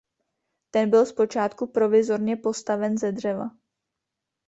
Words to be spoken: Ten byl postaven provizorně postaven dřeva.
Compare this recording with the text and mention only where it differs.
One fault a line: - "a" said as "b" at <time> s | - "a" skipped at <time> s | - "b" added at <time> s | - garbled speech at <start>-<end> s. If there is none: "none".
- "postaven" said as "zpočátku" at 1.1 s
- "ze" added at 3.0 s